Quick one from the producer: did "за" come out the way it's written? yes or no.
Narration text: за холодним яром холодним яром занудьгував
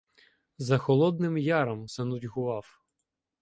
yes